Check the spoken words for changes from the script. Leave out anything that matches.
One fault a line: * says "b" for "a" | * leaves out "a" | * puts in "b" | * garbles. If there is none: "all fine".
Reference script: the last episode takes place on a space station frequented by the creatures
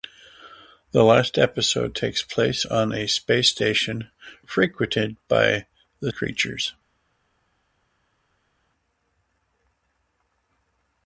all fine